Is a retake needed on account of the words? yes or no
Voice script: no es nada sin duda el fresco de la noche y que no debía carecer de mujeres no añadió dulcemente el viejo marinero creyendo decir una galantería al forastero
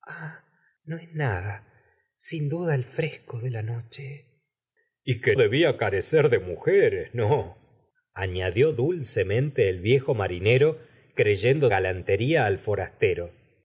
yes